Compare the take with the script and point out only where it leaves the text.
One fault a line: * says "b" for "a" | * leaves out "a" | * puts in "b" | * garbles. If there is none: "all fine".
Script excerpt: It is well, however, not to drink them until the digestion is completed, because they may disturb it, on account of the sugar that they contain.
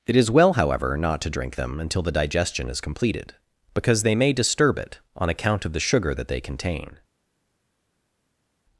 all fine